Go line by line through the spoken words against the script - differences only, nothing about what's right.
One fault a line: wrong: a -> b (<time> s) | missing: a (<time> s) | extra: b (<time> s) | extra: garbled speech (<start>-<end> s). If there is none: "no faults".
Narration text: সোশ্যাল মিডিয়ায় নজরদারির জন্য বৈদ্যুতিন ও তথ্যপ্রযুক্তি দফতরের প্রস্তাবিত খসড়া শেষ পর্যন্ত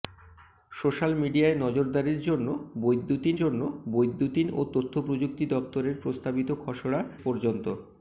extra: জন্য বৈদ্যুতিন (3.3 s)
missing: শেষ (7.0 s)